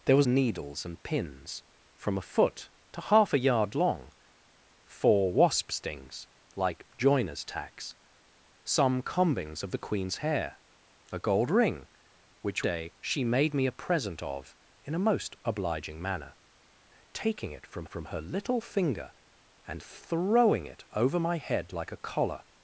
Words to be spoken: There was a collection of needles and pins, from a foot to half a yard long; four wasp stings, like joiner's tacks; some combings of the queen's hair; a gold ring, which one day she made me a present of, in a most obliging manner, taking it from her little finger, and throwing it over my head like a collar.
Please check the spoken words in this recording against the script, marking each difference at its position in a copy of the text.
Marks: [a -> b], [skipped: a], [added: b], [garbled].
There was [skipped: a collection of] needles and pins, from a foot to half a yard long; four wasp stings, like joiner's tacks; some combings of the queen's hair; a gold ring, which [skipped: one] day she made me a present of, in a most obliging manner, taking it from [added: from] her little finger, and throwing it over my head like a collar.